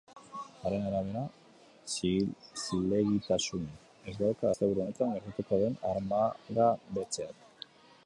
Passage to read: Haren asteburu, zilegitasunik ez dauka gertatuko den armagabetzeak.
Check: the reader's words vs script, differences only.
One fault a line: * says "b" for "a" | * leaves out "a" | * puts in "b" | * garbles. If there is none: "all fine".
* says "arabera" for "asteburu"
* puts in "asteburu honetan"